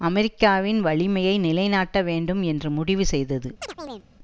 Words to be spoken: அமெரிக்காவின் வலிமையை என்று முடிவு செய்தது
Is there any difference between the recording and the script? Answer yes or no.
yes